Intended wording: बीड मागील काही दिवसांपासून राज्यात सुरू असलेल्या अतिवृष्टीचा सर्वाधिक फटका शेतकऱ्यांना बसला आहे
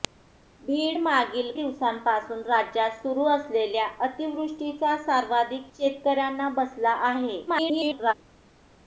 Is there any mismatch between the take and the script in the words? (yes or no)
yes